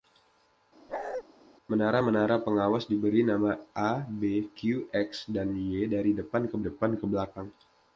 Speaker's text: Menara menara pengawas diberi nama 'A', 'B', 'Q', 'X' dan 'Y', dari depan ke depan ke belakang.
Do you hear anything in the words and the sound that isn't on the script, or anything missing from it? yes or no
yes